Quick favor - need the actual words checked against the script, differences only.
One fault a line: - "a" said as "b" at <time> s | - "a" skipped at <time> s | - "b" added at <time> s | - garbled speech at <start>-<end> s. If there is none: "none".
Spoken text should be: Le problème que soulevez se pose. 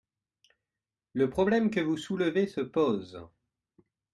- "vous" added at 1.8 s